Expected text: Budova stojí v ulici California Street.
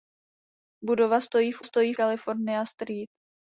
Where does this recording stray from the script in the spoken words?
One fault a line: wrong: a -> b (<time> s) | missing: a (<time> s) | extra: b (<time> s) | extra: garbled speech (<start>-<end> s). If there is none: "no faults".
wrong: ulici -> stojí (1.6 s)